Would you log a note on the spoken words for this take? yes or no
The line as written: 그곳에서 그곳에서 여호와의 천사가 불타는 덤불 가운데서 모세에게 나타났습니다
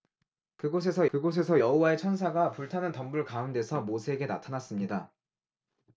no